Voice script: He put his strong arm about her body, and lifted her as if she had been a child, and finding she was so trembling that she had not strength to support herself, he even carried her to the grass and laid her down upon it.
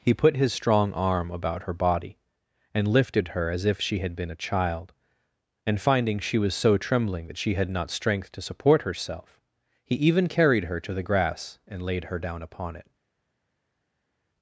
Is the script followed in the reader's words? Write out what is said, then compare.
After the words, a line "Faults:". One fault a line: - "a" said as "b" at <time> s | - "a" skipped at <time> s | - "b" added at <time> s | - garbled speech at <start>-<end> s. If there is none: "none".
He put his strong arm about her body, and lifted her as if she had been a child, and finding she was so trembling that she had not strength to support herself, he even carried her to the grass and laid her down upon it.
Faults:
none